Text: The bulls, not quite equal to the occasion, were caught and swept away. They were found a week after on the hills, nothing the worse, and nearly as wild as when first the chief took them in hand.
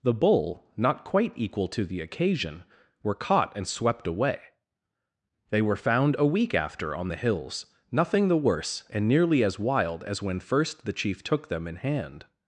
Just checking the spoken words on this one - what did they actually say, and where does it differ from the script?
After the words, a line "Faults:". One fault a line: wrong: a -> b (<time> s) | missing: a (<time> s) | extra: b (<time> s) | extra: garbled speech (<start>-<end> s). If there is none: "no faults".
The bull, not quite equal to the occasion, were caught and swept away. They were found a week after on the hills, nothing the worse, and nearly as wild as when first the chief took them in hand.
Faults:
wrong: bulls -> bull (0.1 s)